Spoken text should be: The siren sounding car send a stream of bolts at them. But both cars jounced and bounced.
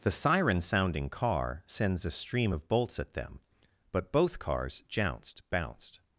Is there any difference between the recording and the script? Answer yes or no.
yes